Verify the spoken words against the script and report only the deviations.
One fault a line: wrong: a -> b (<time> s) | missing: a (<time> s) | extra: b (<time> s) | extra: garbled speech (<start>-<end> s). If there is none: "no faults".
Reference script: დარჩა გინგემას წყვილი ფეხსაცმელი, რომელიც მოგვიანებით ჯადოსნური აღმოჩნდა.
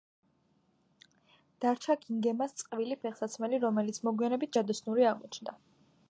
no faults